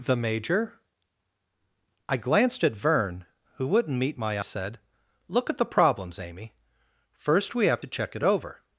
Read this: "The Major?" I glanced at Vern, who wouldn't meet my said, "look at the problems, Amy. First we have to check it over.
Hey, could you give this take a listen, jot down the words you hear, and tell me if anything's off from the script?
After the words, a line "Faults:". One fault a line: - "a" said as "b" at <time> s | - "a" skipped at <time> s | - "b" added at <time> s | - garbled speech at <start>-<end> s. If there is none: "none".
"The Major?" I glanced at Vern, who wouldn't meet my said, "look at the problems, Amy. First we have to check it over.
Faults:
none